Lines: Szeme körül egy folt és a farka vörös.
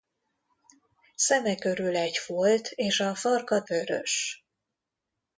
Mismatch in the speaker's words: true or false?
false